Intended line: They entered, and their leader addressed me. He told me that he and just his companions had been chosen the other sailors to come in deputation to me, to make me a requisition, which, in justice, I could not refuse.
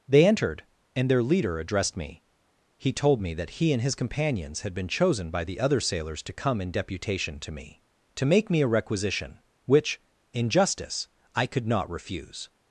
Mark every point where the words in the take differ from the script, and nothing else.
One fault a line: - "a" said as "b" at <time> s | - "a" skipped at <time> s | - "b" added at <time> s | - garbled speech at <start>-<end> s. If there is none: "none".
- "just" skipped at 3.8 s
- "by" added at 5.3 s